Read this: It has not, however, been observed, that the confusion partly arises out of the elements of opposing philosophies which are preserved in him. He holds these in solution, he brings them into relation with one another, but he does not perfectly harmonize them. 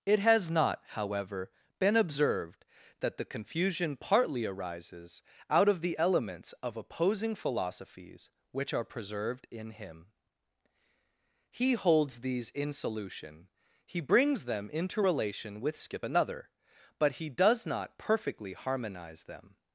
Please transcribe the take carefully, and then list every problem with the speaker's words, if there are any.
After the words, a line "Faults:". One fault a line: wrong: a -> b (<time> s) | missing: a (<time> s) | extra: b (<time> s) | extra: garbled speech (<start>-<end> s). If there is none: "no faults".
It has not, however, been observed, that the confusion partly arises out of the elements of opposing philosophies which are preserved in him. He holds these in solution, he brings them into relation with skip another, but he does not perfectly harmonize them.
Faults:
wrong: one -> skip (15.7 s)